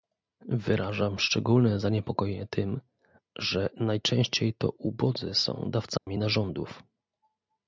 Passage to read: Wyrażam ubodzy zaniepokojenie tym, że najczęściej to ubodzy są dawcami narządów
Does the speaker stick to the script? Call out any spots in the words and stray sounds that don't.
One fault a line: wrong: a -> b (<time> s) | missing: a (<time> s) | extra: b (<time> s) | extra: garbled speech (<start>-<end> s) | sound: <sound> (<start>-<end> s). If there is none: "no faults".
wrong: ubodzy -> szczególne (1.2 s)
sound: dropout (6.0-6.1 s)